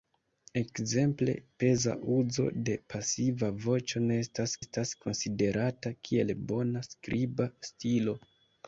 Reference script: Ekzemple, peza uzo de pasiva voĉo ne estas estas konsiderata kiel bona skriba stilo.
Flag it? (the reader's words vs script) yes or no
no